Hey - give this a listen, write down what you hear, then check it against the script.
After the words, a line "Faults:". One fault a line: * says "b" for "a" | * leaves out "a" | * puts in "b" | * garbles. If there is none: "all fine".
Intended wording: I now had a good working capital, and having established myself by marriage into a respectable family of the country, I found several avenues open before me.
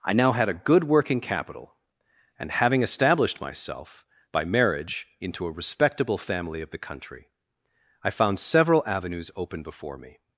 I now had a good working capital, and having established myself by marriage into a respectable family of the country, I found several avenues open before me.
Faults:
all fine